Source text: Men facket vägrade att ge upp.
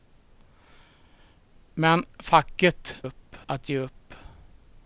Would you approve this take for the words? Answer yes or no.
no